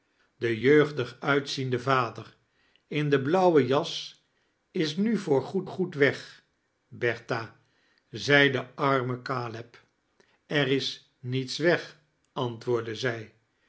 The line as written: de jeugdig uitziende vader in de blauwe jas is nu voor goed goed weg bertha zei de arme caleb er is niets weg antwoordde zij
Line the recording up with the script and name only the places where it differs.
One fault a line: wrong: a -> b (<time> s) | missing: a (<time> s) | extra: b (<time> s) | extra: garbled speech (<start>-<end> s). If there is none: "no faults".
no faults